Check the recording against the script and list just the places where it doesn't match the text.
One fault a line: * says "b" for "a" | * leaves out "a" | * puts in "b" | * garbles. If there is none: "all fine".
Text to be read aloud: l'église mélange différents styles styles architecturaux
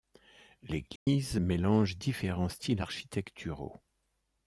* leaves out "styles"